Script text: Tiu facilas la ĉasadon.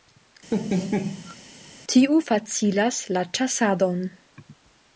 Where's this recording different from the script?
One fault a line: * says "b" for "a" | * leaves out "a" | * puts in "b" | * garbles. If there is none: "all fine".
all fine